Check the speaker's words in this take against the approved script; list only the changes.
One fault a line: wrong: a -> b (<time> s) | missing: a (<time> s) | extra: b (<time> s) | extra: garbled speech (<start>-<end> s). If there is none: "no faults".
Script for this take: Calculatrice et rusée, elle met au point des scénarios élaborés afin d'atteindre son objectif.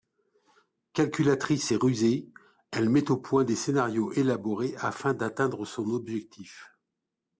no faults